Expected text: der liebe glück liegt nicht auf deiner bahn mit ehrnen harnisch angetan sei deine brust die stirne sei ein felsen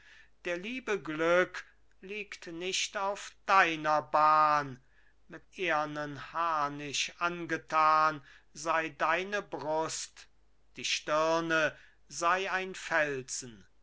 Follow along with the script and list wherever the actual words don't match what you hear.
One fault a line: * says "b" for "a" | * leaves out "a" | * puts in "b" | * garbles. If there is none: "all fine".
all fine